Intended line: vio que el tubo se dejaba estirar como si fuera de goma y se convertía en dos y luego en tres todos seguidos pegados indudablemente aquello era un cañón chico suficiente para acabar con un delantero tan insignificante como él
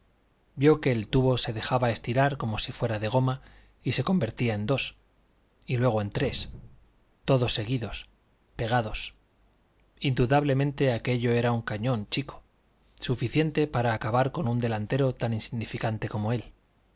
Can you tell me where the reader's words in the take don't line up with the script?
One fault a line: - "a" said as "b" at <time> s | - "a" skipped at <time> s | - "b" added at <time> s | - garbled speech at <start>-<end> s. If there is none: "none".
none